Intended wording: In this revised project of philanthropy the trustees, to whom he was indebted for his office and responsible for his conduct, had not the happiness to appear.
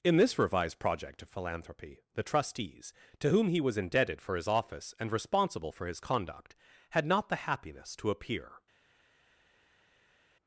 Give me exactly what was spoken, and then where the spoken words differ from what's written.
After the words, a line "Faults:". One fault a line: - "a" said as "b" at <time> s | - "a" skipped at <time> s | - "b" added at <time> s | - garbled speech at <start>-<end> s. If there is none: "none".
In this revised project of philanthropy the trustees, to whom he was indebted for his office and responsible for his conduct, had not the happiness to appear.
Faults:
none